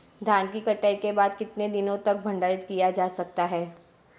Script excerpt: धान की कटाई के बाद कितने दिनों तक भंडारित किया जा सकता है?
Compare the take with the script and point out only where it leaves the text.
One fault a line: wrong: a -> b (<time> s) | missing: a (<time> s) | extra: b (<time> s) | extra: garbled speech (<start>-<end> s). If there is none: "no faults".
no faults